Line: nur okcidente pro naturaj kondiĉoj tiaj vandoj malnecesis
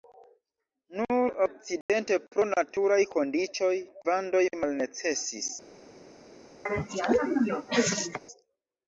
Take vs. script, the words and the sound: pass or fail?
fail